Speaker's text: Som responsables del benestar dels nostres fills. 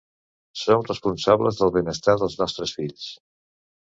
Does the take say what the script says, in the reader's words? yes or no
yes